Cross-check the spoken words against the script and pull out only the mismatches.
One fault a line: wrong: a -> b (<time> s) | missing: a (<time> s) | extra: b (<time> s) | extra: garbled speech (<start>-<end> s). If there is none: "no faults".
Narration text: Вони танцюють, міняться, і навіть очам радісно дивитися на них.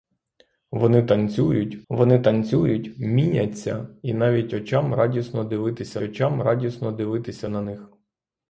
extra: вони танцюють (1.9 s)
extra: очам радісно дивитися (6.0 s)